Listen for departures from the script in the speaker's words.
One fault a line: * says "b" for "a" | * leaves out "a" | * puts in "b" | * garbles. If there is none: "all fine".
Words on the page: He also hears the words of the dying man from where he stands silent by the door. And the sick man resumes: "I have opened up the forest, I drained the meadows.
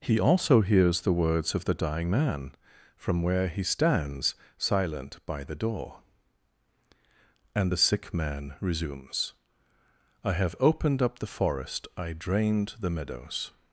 all fine